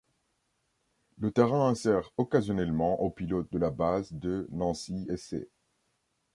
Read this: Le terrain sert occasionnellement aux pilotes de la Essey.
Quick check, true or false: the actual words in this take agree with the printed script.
false